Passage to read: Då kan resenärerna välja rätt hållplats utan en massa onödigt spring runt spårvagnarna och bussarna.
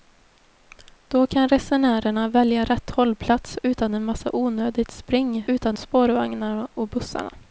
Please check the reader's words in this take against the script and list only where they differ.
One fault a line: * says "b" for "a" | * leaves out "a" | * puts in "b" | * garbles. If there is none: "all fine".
* says "utan" for "runt"